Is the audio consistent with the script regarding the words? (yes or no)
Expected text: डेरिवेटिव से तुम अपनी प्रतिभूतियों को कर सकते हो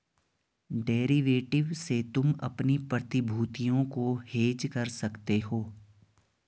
no